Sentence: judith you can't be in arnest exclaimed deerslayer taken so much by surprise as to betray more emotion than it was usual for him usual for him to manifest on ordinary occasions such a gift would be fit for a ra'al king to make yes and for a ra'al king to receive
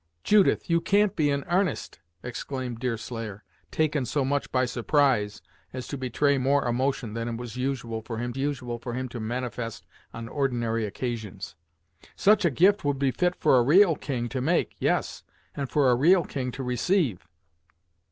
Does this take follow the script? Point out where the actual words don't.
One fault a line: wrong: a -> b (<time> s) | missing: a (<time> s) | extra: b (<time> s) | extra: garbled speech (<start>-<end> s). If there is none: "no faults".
no faults